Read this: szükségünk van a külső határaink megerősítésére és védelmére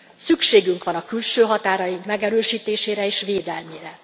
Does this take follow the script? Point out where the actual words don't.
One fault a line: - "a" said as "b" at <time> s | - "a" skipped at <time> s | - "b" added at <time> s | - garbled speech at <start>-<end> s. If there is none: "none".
none